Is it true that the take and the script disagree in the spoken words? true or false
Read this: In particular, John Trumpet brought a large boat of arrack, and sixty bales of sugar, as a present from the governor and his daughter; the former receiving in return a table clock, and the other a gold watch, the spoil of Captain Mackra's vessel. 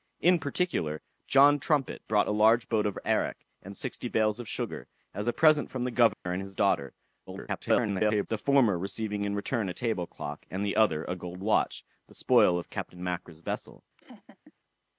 true